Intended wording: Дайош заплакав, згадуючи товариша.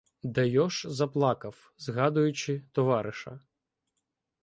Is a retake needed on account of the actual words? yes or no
no